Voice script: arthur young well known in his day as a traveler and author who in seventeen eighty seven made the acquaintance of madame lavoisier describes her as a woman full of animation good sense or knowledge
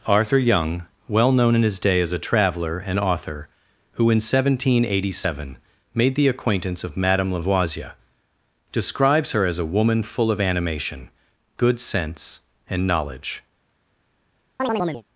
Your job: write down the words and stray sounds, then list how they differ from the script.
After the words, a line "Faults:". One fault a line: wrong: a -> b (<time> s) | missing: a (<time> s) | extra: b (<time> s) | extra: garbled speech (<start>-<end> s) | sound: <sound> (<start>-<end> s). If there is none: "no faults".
arthur young well known in his day as a traveler and author who in seventeen eighty seven made the acquaintance of madame lavoisier describes her as a woman full of animation good sense and knowledge
Faults:
wrong: or -> and (12.7 s)
sound: chirp (14.6-15.0 s)